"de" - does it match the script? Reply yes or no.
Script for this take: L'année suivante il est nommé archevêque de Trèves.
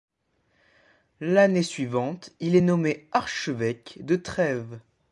yes